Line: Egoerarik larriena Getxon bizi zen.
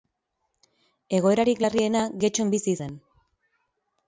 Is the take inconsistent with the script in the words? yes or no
no